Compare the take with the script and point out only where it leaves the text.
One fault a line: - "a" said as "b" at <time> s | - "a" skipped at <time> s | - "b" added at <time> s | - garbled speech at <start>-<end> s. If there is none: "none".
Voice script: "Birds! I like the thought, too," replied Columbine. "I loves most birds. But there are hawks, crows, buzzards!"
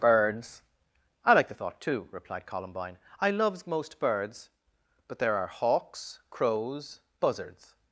none